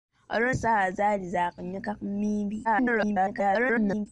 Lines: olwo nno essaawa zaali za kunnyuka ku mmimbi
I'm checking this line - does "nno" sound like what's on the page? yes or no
no